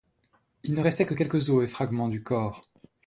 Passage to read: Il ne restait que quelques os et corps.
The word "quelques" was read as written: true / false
true